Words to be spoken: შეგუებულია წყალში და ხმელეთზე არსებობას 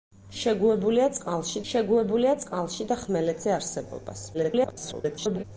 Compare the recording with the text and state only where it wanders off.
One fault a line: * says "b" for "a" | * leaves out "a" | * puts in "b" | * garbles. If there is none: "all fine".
* puts in "შეგუებულია წყალში"
* garbles